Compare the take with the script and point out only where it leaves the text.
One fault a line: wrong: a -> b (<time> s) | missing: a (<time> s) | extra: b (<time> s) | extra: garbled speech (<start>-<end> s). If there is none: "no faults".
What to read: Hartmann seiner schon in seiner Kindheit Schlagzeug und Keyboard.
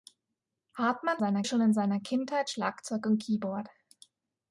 no faults